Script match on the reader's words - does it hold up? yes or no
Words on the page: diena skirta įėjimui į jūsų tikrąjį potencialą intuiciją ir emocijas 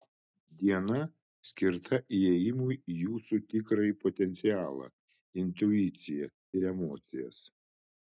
yes